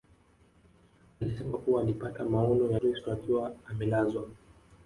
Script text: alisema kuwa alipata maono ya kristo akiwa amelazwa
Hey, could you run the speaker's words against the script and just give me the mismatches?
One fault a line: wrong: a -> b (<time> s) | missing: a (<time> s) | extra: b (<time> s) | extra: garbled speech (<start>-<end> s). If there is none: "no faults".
no faults